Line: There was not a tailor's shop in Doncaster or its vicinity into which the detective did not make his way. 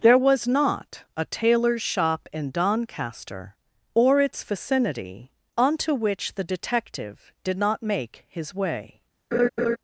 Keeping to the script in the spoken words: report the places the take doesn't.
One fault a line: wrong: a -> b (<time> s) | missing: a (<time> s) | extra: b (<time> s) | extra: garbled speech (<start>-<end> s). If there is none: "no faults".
wrong: into -> onto (5.5 s)